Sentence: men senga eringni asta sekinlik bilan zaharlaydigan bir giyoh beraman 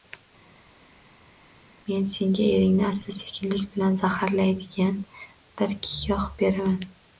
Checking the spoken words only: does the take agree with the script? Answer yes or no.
yes